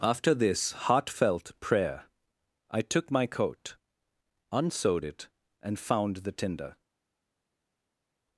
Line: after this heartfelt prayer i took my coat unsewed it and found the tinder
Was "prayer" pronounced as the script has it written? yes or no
yes